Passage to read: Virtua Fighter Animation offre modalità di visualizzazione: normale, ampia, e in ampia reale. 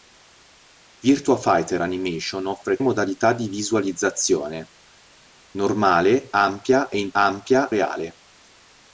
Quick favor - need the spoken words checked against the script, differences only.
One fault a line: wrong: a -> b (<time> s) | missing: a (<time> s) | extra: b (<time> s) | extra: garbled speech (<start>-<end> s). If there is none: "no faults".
no faults